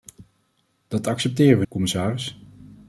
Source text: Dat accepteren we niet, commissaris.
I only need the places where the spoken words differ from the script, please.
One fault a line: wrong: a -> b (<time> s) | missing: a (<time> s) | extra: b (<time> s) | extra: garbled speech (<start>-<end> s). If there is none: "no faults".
missing: niet (1.6 s)